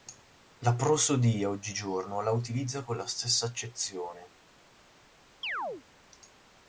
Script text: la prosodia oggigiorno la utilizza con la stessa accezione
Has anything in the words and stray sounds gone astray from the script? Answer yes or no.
yes